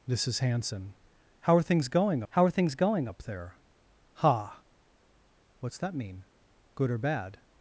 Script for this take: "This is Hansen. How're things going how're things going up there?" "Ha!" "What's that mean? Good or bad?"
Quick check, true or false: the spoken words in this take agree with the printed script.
true